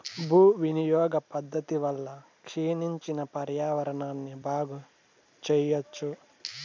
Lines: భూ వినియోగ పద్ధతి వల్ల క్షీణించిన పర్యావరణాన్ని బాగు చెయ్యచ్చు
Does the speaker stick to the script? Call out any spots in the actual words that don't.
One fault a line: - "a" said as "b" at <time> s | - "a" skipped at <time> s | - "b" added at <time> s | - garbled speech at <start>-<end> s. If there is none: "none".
none